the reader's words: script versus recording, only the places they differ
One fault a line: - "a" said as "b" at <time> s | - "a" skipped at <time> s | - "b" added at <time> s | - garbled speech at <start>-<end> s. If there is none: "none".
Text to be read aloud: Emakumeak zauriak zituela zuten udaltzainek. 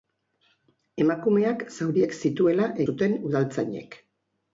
none